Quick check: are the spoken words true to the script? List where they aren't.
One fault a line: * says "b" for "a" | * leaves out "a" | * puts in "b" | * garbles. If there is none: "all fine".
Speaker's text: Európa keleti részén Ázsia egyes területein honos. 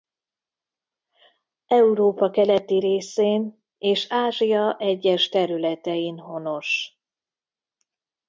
* puts in "és"